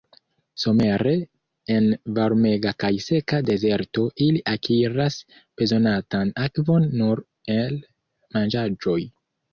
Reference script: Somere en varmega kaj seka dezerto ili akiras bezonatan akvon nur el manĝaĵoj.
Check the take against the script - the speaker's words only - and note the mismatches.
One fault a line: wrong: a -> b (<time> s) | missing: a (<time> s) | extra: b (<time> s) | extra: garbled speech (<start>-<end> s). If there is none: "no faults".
no faults